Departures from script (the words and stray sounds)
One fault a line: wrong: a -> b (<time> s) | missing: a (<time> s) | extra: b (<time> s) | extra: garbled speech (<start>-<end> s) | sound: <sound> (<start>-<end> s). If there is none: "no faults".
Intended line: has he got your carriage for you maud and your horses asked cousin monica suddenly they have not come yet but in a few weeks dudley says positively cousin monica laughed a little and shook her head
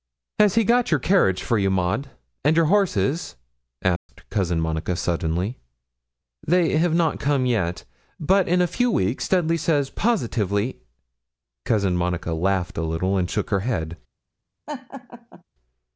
sound: dropout (4.0-4.1 s)
sound: laugh (14.7-15.4 s)